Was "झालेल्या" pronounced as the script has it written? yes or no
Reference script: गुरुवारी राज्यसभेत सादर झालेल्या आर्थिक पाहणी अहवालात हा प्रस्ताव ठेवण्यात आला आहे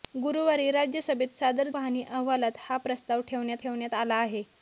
no